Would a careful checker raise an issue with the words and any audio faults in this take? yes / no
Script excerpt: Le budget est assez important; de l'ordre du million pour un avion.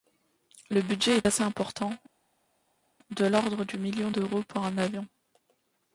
yes